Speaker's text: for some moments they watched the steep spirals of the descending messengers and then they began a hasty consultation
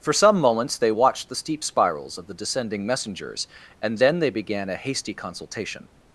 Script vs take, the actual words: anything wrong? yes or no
no